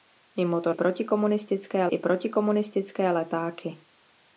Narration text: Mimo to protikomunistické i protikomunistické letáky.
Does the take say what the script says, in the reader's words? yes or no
yes